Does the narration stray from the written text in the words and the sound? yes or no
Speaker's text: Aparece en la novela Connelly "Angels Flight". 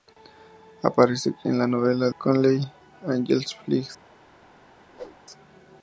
yes